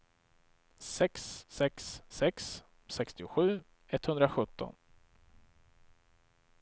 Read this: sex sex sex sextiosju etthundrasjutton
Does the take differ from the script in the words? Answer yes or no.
no